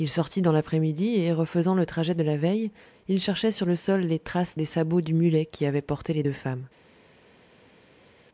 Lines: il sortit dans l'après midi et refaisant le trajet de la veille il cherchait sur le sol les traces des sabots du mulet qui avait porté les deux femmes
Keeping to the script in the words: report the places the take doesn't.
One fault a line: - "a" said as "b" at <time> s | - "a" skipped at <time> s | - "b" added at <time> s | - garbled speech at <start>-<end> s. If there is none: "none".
none